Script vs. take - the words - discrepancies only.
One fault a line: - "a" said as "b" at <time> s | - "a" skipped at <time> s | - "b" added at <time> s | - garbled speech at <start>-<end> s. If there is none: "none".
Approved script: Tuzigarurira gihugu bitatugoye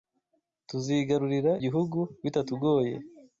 none